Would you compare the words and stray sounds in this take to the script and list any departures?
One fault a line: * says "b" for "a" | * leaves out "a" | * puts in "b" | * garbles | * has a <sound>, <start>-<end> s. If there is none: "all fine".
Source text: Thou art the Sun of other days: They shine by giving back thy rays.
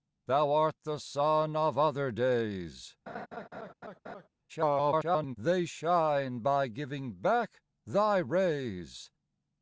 * has a laugh, 3.1-4.3 s
* garbles